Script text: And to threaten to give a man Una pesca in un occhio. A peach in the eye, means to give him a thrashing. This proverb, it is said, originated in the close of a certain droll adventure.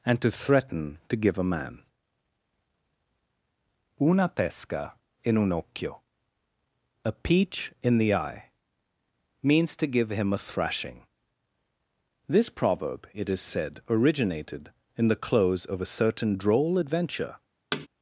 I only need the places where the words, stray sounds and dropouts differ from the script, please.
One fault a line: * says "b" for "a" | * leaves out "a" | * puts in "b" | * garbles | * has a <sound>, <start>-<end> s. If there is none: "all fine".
* has a thud, 17.7-17.9 s